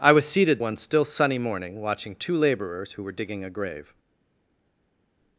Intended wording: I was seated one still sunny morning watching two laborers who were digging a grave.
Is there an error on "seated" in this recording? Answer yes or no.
no